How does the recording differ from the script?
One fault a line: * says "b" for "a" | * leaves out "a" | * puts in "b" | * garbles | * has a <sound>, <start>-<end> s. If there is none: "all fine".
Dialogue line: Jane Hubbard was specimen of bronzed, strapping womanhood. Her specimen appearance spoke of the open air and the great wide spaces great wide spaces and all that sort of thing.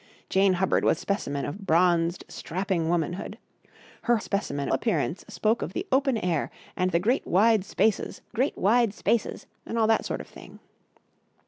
all fine